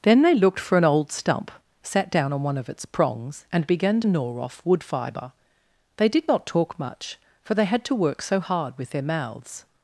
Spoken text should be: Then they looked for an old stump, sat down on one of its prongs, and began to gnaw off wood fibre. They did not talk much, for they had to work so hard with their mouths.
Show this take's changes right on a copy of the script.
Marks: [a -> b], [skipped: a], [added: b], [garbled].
Then they looked for an old stump, sat down on one of its prongs, and began [skipped: to] gnaw off wood fibre. They did not talk much, for they had to work so hard with their mouths.